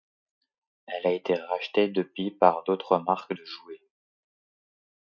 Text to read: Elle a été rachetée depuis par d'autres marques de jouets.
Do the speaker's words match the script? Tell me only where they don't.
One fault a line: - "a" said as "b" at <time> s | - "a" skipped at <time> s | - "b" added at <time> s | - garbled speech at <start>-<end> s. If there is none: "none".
none